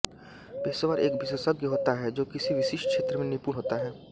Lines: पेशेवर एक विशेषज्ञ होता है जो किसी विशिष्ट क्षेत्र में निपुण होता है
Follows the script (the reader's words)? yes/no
yes